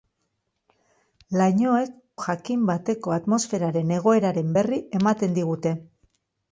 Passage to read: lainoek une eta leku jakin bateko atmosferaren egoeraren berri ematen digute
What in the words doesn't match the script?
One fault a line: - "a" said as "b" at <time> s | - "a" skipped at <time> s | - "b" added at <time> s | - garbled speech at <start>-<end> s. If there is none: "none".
- "une eta leku" skipped at 1.9 s